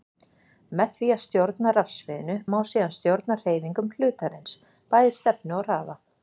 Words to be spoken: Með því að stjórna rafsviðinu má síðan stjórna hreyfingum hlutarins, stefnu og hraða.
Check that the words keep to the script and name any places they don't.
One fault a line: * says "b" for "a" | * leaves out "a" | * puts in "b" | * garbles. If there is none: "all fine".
* puts in "bæði"